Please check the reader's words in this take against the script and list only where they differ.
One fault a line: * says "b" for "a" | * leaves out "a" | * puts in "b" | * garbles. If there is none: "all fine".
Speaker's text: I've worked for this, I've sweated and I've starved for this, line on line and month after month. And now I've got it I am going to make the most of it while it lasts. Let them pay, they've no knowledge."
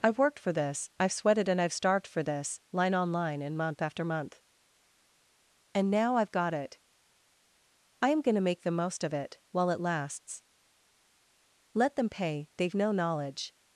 all fine